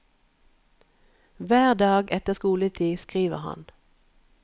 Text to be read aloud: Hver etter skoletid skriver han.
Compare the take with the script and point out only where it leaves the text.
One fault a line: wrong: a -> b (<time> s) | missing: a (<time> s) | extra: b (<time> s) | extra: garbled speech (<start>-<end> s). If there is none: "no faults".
extra: dag (1.7 s)